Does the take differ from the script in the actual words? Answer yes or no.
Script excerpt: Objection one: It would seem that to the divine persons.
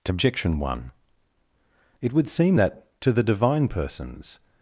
no